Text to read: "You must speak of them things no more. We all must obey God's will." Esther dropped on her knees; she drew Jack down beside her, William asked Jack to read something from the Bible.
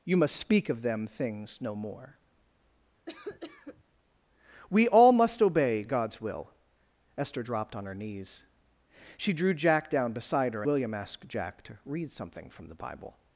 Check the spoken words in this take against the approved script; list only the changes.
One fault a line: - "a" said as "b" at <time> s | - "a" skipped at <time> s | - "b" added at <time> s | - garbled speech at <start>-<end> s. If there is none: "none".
none